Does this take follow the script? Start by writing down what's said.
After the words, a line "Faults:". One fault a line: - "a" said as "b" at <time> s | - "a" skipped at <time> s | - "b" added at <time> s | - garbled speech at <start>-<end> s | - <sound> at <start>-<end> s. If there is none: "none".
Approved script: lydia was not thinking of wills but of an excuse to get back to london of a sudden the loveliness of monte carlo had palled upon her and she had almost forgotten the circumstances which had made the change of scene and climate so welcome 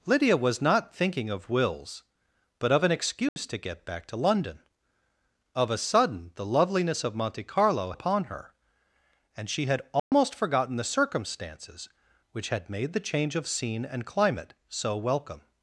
lydia was not thinking of wills but of an excuse to get back to london of a sudden the loveliness of monte carlo upon her and she had almost forgotten the circumstances which had made the change of scene and climate so welcome
Faults:
- dropout at 3.3-3.4 s
- "had palled" skipped at 7.9 s
- dropout at 10.0-10.1 s